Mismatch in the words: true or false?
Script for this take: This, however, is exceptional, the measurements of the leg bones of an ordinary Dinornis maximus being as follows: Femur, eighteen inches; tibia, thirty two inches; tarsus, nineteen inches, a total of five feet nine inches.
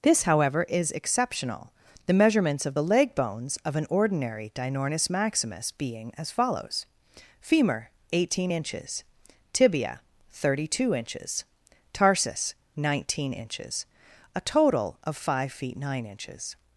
false